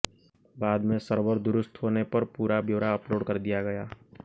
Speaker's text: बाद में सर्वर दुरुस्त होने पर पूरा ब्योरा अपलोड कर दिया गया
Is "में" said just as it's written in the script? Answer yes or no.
yes